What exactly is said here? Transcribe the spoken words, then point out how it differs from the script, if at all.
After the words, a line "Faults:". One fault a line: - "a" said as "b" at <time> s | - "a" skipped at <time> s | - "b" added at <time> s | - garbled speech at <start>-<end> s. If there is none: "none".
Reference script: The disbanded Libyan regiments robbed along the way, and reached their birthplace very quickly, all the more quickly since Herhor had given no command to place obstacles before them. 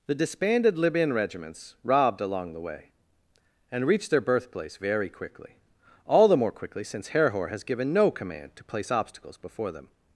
The disbanded Libyan regiments robbed along the way, and reached their birthplace very quickly, all the more quickly since Herhor has given no command to place obstacles before them.
Faults:
- "had" said as "has" at 7.5 s